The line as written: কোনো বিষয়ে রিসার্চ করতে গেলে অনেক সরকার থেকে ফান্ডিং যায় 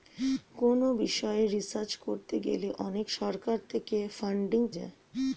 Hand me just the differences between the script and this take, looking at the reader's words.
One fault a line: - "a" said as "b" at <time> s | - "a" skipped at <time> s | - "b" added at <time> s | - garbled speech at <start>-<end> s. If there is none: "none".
none